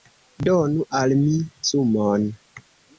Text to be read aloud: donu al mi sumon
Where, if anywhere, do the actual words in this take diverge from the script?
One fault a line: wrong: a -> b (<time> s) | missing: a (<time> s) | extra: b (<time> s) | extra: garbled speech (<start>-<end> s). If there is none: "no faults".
no faults